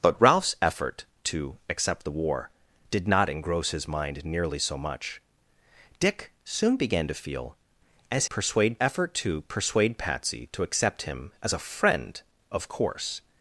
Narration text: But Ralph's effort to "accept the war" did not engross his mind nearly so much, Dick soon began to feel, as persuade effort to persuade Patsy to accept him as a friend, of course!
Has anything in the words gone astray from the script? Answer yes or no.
no